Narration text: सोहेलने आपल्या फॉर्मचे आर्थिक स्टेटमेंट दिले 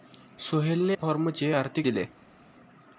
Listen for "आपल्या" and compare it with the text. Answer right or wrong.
wrong